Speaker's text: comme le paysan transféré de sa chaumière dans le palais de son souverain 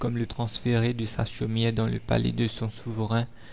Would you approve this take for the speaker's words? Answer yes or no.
no